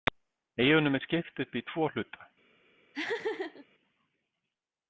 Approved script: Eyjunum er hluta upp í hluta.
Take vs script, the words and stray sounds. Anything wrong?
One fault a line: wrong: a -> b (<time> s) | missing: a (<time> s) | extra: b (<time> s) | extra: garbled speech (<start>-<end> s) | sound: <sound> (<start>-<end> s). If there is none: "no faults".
wrong: hluta -> skipt (1.1 s)
extra: tvo (1.7 s)
sound: laugh (2.9-3.7 s)